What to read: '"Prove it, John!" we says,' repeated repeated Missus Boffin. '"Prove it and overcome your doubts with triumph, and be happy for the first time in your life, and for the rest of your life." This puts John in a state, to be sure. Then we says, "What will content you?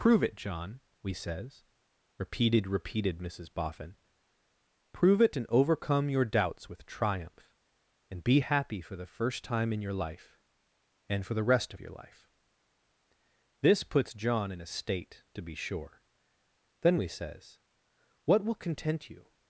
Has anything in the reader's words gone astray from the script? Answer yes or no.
no